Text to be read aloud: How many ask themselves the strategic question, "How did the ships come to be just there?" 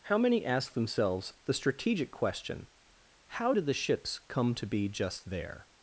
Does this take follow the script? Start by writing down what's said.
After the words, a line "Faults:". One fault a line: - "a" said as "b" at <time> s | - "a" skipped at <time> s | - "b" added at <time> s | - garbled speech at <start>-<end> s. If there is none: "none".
How many ask themselves the strategic question, "How did the ships come to be just there?"
Faults:
none